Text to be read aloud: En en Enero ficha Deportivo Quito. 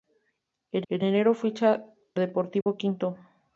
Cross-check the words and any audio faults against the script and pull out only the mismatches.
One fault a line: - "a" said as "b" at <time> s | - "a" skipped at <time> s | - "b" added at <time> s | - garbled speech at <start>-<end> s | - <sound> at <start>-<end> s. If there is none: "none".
- dropout at 2.6-2.7 s